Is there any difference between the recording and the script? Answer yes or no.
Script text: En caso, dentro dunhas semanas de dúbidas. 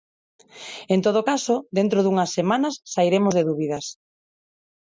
yes